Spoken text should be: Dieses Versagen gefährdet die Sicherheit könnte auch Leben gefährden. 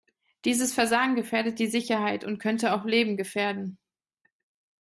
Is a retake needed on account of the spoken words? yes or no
yes